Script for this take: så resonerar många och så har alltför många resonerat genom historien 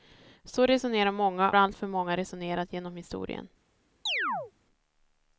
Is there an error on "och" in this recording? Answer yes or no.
yes